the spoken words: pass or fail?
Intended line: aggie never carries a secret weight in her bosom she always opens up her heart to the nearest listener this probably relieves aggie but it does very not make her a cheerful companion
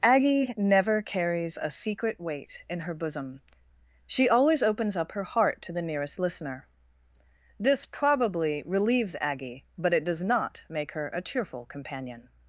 fail